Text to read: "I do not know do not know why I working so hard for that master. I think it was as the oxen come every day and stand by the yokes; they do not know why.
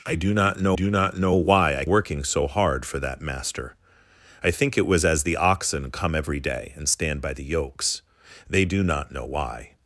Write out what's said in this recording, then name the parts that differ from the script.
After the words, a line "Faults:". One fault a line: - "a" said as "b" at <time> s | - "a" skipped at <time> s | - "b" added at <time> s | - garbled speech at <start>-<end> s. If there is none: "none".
"I do not know do not know why I working so hard for that master. I think it was as the oxen come every day and stand by the yokes; they do not know why.
Faults:
none